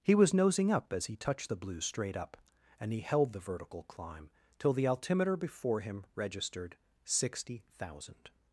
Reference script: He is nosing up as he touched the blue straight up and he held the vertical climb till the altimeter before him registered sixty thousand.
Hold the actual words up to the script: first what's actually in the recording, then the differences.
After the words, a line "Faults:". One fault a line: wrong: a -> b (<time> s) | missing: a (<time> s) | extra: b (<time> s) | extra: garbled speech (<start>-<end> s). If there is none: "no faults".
He was nosing up as he touched the blue straight up and he held the vertical climb till the altimeter before him registered sixty thousand.
Faults:
wrong: is -> was (0.1 s)